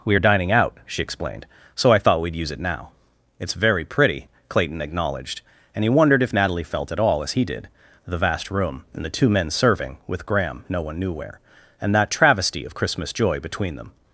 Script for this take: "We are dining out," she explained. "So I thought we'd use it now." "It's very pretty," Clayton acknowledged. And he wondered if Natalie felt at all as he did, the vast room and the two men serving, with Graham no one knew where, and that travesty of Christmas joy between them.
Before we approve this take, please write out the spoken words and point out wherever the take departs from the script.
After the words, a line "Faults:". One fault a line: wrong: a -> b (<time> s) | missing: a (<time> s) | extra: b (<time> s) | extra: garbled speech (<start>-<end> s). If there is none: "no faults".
"We are dining out," she explained. "So I thought we'd use it now." "It's very pretty," Clayton acknowledged. And he wondered if Natalie felt at all as he did, the vast room and the two men serving, with Graham no one knew where, and that travesty of Christmas joy between them.
Faults:
no faults